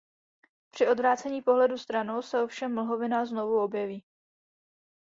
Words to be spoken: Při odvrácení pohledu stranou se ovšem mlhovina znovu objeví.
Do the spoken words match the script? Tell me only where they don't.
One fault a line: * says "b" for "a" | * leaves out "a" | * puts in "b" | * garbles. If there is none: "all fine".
all fine